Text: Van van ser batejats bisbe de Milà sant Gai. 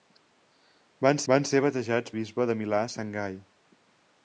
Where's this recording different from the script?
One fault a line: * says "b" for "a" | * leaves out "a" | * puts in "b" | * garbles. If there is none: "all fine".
all fine